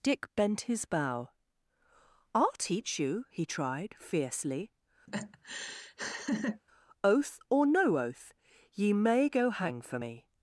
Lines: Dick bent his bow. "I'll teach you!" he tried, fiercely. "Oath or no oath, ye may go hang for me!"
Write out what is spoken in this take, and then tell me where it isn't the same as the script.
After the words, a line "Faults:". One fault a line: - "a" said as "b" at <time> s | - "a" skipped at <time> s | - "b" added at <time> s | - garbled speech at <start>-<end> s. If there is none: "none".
Dick bent his bow. "I'll teach you!" he tried, fiercely. "Oath or no oath, ye may go hang for me!"
Faults:
none